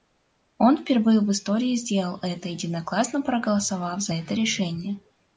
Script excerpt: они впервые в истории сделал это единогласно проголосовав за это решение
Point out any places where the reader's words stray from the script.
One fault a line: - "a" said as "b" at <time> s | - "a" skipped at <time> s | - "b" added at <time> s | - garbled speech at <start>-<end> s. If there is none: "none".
- "они" said as "он" at 0.6 s